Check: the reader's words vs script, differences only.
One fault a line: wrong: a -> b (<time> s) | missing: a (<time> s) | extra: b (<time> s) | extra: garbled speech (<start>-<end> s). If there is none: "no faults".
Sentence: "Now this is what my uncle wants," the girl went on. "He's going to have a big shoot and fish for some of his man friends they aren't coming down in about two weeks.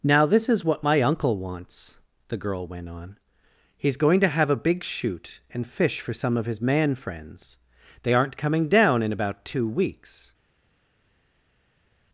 no faults